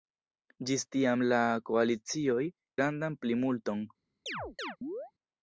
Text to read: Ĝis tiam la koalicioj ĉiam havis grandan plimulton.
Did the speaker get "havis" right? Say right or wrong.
wrong